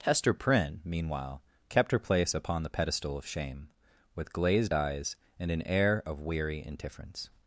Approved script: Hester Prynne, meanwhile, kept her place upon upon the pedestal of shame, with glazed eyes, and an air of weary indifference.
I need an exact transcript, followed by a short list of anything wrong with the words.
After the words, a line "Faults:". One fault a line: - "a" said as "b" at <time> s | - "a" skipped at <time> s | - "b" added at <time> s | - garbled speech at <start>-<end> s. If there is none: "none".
Hester Prynne, meanwhile, kept her place upon the pedestal of shame, with glazed eyes, and an air of weary indifference.
Faults:
- "upon" skipped at 2.6 s